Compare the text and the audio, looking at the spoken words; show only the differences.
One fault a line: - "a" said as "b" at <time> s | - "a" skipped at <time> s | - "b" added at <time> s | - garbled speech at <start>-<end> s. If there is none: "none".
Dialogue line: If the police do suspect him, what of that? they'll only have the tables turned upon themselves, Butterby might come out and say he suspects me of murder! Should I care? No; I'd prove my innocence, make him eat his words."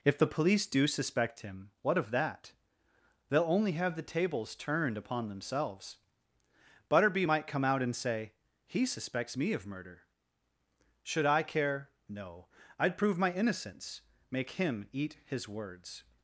none